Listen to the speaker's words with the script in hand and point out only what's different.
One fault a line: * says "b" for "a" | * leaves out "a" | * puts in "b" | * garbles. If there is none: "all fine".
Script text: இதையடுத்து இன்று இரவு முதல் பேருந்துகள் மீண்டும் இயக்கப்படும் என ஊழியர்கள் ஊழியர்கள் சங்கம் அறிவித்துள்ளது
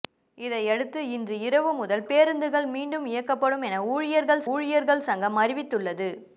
all fine